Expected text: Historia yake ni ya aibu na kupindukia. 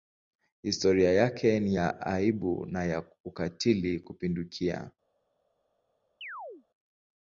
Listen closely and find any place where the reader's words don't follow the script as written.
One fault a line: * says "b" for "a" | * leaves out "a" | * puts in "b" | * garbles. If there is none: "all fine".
* puts in "ya ukatili"